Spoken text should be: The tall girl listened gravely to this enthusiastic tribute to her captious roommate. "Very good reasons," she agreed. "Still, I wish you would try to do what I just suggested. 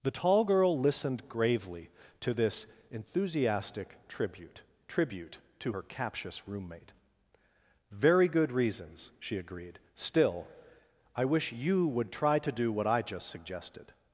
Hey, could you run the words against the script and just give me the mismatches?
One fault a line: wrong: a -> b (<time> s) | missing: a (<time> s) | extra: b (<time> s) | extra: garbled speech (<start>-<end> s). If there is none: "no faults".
extra: tribute (4.9 s)